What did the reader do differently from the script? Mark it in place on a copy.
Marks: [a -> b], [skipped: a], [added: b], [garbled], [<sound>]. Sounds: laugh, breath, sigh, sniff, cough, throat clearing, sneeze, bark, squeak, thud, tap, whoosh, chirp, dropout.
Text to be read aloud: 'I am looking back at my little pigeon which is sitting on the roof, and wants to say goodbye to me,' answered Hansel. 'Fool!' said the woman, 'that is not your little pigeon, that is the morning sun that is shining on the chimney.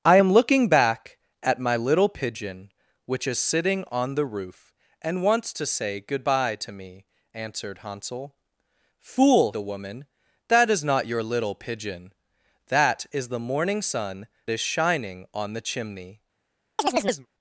'I am looking back at my little pigeon which is sitting on the roof, and wants to say goodbye to me,' answered Hansel. 'Fool!' [skipped: said] the woman, 'that is not your little pigeon, that is the morning sun [skipped: that] is shining on the chimney. [chirp]